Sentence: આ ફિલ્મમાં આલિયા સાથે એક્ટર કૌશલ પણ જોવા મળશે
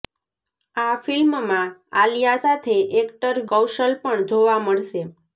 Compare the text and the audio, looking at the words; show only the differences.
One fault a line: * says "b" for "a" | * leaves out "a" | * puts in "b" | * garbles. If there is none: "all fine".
all fine